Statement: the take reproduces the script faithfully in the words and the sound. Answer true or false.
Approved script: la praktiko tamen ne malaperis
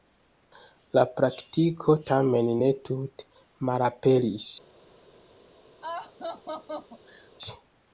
false